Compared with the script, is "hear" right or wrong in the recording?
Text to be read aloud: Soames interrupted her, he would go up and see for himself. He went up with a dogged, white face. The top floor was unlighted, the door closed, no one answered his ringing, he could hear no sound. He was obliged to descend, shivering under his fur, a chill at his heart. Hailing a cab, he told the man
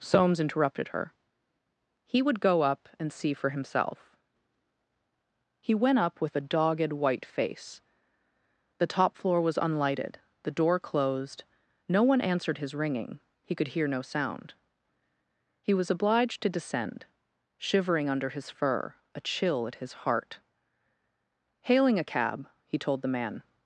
right